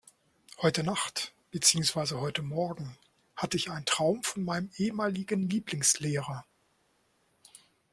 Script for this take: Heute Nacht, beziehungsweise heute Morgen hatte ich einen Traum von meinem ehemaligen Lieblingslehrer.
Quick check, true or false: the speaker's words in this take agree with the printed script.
true